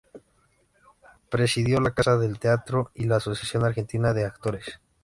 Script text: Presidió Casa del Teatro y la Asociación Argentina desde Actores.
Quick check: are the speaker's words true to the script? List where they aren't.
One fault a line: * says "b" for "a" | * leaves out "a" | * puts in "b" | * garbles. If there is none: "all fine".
* puts in "la"
* says "de" for "desde"